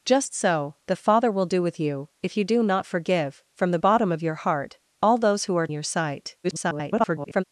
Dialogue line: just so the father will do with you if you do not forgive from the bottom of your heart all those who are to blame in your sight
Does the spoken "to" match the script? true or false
false